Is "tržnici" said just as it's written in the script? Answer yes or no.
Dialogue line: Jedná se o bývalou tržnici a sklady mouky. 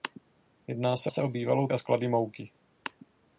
no